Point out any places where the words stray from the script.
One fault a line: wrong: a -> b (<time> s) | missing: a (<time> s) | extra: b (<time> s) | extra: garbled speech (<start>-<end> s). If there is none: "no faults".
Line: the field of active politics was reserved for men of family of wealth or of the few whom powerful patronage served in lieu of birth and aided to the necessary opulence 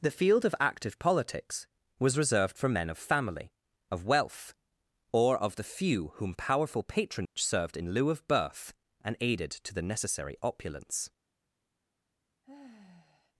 no faults